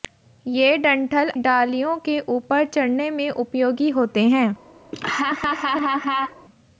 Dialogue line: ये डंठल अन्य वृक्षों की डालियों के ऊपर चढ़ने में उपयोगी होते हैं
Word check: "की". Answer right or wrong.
wrong